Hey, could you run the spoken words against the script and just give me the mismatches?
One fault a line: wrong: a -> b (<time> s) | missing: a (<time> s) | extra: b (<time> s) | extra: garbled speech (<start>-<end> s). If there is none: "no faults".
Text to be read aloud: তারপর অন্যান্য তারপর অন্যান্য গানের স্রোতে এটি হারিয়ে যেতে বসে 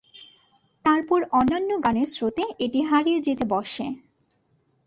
missing: তারপর অন্যান্য (1.7 s)